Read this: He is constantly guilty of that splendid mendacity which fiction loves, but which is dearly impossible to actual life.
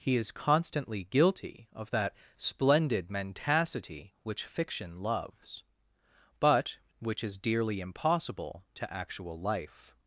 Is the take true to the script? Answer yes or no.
yes